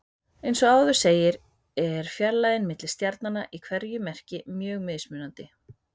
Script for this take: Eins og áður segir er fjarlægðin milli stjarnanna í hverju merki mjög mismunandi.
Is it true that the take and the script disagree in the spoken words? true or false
false